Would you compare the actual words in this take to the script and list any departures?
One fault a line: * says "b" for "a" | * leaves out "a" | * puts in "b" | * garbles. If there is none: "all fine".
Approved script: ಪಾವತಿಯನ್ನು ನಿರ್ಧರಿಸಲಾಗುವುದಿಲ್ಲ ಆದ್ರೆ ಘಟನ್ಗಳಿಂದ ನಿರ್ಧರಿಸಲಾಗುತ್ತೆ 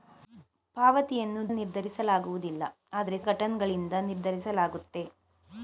all fine